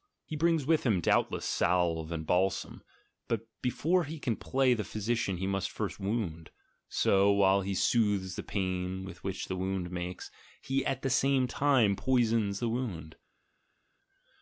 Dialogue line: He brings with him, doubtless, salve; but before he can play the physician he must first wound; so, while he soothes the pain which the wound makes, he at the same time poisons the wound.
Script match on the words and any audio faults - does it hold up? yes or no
no